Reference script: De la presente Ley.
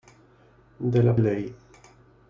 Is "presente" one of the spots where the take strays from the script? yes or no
yes